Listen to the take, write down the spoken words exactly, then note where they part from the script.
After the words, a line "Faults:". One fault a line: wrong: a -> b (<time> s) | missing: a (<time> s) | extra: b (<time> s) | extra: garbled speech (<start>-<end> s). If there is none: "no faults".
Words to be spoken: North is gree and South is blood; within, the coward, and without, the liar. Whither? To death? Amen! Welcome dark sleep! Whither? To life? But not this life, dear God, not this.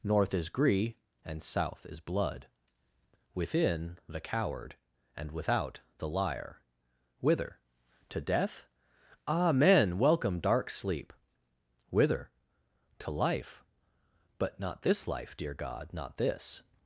North is gree and South is blood; within, the coward, and without, the liar. Whither? To death? Amen! Welcome dark sleep! Whither? To life? But not this life, dear God, not this.
Faults:
no faults